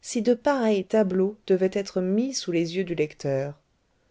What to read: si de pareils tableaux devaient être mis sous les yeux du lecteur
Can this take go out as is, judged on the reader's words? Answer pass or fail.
pass